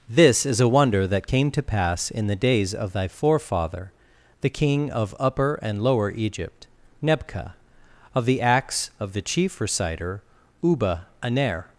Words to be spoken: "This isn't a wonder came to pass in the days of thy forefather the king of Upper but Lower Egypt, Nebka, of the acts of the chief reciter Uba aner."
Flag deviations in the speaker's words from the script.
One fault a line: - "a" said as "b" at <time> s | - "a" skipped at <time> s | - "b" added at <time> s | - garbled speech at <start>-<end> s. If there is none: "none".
- "isn't" said as "is" at 0.5 s
- "that" added at 1.1 s
- "but" said as "and" at 5.6 s